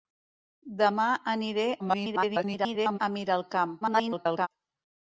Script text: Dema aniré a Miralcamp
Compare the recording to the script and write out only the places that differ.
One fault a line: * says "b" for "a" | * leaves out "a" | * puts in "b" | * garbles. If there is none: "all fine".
* garbles
* garbles